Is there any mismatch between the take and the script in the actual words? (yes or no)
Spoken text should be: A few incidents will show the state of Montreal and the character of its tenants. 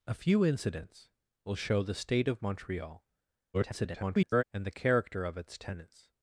yes